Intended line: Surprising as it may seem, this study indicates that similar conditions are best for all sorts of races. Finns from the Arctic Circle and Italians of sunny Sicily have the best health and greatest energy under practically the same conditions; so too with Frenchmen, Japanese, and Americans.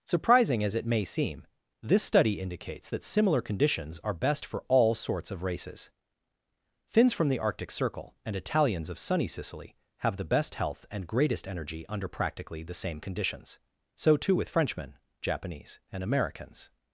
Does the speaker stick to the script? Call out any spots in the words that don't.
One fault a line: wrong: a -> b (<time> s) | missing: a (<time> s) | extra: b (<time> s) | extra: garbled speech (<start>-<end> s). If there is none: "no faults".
no faults